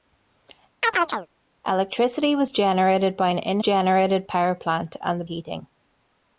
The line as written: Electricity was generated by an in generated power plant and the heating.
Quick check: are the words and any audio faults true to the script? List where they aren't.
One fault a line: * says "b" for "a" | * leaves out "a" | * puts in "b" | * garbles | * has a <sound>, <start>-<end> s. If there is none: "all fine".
* has a chirp, 0.8-1.3 s